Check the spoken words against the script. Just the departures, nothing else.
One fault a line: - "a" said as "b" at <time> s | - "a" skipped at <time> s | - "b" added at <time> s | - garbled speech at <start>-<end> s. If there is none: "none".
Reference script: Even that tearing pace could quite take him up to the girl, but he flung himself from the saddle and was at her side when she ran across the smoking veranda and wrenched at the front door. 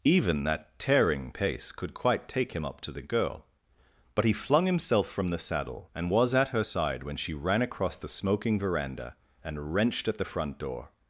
none